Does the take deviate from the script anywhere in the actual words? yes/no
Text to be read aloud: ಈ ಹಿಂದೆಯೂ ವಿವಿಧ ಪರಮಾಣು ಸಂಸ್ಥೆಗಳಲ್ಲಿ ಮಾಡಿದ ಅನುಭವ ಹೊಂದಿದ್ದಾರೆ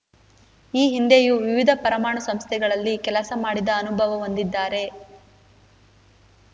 yes